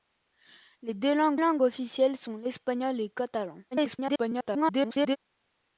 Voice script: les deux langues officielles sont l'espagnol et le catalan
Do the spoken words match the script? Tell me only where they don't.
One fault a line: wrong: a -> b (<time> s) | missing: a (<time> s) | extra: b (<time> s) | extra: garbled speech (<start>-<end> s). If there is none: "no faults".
extra: langues (1.4 s)
extra: garbled speech (3.7-5.2 s)